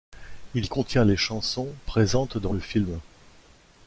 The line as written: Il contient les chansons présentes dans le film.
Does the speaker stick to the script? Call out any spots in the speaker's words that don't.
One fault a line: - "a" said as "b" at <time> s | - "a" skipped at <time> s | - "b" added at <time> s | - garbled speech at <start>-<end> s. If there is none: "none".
none